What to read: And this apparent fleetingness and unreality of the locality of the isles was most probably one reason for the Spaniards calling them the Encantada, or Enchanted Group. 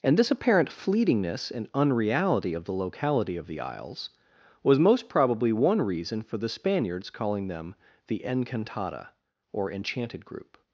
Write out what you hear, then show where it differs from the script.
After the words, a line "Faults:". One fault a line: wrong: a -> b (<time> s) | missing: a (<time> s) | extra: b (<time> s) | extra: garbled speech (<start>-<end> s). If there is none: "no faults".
And this apparent fleetingness and unreality of the locality of the isles was most probably one reason for the Spaniards calling them the Encantada, or Enchanted Group.
Faults:
no faults